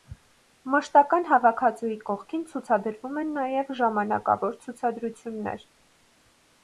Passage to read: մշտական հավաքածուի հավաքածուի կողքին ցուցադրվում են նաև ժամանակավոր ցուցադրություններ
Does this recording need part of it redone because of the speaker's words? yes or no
yes